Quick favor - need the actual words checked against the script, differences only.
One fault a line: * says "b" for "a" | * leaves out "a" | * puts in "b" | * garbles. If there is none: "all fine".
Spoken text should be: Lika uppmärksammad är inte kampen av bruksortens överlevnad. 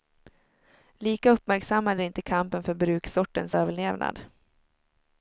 * says "för" for "av"